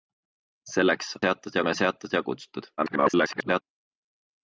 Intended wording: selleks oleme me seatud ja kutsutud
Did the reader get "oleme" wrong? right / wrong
wrong